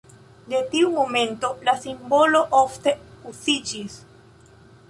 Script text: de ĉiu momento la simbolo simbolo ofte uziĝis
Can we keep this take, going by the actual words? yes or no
no